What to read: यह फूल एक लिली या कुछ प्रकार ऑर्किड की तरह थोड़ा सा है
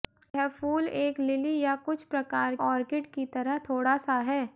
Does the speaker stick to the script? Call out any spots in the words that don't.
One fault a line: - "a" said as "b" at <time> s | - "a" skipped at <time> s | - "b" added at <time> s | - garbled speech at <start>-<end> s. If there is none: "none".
none